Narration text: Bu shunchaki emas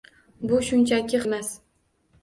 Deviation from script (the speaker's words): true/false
false